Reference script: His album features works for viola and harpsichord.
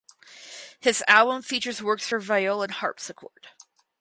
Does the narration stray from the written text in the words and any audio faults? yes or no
no